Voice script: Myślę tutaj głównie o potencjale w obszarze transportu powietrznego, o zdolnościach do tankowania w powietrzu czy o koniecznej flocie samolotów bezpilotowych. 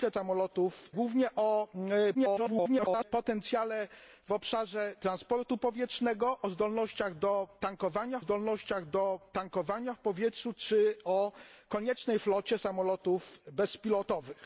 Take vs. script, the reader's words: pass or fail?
fail